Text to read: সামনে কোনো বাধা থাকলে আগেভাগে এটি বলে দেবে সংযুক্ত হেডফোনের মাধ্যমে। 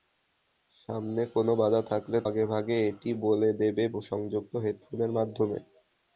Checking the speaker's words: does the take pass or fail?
pass